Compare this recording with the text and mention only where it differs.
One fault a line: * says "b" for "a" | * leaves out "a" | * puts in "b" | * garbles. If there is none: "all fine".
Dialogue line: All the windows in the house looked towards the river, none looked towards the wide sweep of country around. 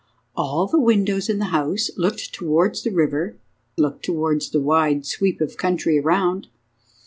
* leaves out "none"